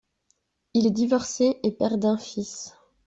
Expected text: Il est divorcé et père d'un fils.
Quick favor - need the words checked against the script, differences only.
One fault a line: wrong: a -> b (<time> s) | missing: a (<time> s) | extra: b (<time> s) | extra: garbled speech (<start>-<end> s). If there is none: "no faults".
no faults